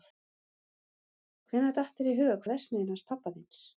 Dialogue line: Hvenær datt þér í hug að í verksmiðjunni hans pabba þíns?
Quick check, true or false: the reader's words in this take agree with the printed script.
true